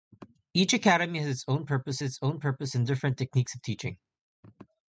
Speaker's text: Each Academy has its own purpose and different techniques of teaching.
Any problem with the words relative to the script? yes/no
yes